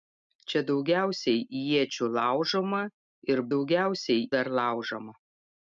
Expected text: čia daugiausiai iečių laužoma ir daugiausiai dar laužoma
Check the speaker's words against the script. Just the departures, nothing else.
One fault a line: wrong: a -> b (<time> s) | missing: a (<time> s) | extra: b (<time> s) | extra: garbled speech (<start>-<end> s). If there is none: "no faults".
no faults